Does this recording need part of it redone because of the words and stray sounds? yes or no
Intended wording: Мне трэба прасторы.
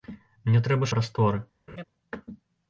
yes